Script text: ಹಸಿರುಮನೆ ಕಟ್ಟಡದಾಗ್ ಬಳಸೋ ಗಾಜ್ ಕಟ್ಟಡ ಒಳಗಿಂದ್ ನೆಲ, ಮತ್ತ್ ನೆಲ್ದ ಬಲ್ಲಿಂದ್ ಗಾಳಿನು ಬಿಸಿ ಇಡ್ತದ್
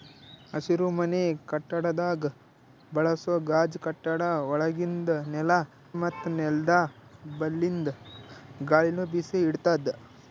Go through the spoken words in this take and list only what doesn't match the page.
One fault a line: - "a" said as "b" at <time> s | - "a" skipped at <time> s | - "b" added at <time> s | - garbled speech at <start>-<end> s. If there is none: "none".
none